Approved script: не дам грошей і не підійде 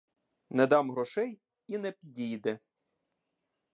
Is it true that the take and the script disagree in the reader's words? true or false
false